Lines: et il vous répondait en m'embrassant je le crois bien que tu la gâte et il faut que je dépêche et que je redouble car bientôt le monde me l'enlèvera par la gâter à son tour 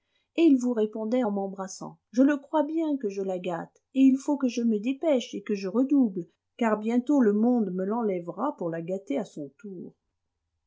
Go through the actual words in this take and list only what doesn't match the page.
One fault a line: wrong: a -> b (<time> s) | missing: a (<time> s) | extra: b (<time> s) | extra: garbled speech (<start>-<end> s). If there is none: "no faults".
wrong: tu -> je (3.1 s)
extra: me (4.6 s)
wrong: par -> pour (8.6 s)